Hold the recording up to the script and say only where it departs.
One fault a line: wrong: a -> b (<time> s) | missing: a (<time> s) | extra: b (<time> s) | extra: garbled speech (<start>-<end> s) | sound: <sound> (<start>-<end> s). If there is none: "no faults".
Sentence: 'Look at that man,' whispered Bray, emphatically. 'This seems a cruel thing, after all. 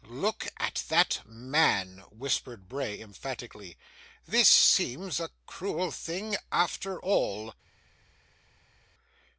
no faults